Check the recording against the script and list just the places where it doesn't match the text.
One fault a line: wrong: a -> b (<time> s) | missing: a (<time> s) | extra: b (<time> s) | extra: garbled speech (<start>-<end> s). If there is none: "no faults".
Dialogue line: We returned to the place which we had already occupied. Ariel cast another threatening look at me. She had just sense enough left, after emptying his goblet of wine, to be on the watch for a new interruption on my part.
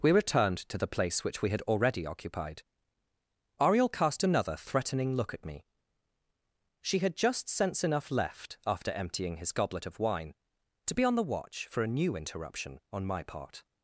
no faults